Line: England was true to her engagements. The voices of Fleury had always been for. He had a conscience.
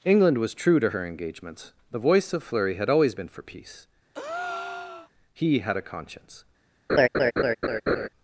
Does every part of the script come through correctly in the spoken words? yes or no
no